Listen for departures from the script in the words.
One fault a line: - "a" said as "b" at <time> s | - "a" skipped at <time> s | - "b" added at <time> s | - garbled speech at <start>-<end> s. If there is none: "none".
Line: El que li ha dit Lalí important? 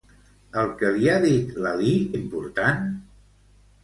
none